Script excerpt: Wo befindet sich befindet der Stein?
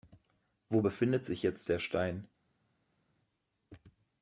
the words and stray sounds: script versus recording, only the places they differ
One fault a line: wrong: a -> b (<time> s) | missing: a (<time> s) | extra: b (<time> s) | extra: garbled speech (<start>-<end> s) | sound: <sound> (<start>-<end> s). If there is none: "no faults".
wrong: befindet -> jetzt (1.4 s)